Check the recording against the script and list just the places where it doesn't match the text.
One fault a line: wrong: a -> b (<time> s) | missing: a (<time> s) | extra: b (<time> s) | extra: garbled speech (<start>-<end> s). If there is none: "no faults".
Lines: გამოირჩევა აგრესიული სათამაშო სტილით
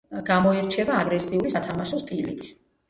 no faults